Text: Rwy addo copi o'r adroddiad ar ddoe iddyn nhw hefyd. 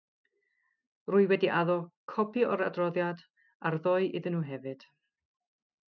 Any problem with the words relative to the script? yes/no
yes